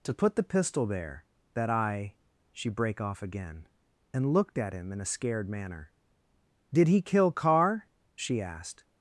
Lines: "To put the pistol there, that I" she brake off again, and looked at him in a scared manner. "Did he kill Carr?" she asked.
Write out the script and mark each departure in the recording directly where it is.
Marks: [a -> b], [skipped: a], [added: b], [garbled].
"To put the pistol there, that I" she brake off again, and looked at him in a scared manner. "Did he kill Carr?" she asked.